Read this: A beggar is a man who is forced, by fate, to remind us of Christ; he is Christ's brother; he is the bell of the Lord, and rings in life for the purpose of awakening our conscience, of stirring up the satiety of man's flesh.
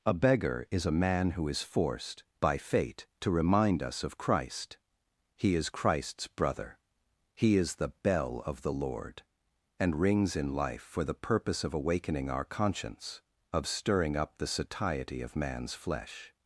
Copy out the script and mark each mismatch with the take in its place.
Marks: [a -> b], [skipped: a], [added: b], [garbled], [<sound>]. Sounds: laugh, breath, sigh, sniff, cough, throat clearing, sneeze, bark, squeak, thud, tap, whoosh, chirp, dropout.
A beggar is a man who is forced, by fate, to remind us of Christ; he is Christ's brother; he is the bell of the Lord, and rings in life for the purpose of awakening our conscience, of stirring up the satiety of man's flesh.